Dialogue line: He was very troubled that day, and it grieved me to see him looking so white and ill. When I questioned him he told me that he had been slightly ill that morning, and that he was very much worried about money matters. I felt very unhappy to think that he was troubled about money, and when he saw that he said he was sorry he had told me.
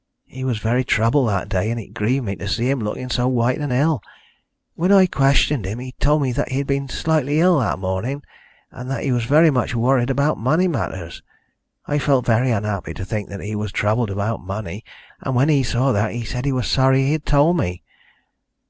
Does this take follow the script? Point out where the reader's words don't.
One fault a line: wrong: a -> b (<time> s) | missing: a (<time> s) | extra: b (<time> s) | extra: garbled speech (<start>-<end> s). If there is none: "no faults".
no faults